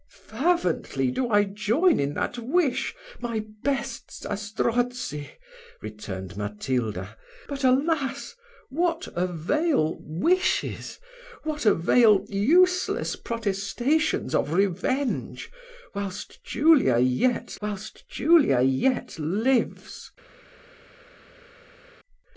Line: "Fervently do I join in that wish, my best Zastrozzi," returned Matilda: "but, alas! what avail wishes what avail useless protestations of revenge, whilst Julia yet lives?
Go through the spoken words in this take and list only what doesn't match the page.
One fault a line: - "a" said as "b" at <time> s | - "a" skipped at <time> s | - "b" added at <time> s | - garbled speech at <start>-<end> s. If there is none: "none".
- "whilst Julia yet" added at 17.6 s